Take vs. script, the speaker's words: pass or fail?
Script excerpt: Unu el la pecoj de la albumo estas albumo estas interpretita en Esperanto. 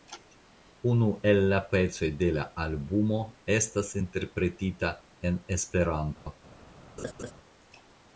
fail